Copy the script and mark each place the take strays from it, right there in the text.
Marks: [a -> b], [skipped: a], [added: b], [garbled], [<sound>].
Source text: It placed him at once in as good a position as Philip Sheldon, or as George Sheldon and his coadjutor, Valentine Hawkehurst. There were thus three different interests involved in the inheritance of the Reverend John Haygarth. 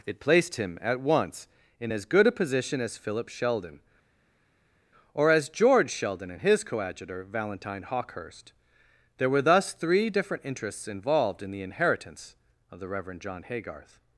It placed him at once in as good a position as Philip Sheldon, or as George Sheldon and his coadjutor, Valentine Hawkehurst. There were thus three different interests involved in the inheritance of the Reverend John Haygarth.